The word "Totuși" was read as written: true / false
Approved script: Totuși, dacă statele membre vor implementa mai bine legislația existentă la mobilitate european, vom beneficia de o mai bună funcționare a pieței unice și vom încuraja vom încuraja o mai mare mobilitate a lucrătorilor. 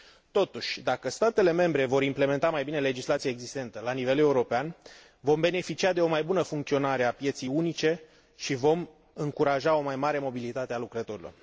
true